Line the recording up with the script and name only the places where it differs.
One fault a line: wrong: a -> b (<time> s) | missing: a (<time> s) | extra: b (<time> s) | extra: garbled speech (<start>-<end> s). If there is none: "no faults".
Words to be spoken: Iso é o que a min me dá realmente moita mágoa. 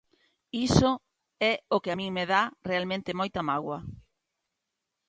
no faults